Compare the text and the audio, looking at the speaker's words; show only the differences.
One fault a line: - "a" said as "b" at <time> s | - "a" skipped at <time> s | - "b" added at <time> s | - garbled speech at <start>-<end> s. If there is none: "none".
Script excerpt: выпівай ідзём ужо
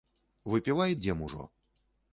none